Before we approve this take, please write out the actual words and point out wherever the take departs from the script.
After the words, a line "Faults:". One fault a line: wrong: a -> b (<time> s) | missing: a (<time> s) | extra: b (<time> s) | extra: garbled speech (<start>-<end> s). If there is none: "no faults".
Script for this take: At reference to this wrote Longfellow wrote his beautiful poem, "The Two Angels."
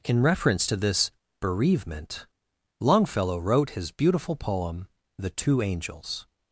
In reference to this bereavement Longfellow wrote his beautiful poem, "The Two Angels."
Faults:
wrong: At -> In (0.0 s)
wrong: wrote -> bereavement (1.4 s)